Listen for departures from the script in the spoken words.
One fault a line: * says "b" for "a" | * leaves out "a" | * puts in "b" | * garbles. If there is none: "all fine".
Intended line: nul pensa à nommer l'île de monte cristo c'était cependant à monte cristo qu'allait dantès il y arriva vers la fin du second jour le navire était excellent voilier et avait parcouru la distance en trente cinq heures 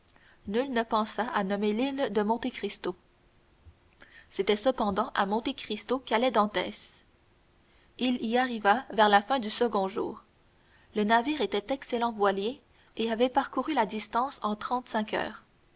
* puts in "ne"